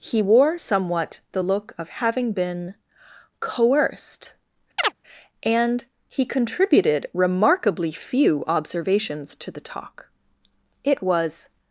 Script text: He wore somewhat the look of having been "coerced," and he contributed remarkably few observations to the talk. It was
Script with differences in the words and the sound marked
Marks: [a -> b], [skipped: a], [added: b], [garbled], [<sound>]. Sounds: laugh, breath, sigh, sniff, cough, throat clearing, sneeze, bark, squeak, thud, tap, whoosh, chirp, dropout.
He wore somewhat the look of having been "coerced," [chirp] and he contributed remarkably few observations to the talk. It was